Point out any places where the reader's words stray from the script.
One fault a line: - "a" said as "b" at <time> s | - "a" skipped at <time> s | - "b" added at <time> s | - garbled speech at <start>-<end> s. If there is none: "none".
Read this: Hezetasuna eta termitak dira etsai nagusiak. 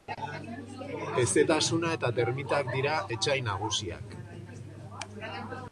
none